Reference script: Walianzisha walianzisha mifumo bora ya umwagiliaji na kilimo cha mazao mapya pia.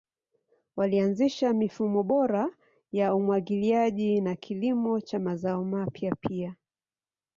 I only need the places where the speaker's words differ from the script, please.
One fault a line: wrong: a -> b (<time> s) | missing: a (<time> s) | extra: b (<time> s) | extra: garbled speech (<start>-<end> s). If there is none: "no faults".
missing: walianzisha (1.5 s)